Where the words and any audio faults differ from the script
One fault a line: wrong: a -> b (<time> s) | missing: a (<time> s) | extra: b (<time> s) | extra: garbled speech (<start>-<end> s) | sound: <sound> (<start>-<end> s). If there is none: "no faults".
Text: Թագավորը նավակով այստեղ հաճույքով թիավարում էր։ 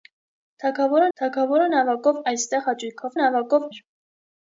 extra: թագավորը (1.2 s)
wrong: թիավարում -> նավակով (3.2 s)